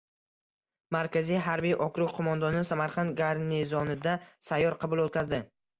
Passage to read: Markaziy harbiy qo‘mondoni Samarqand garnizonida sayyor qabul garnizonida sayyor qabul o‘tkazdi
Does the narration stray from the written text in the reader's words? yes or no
yes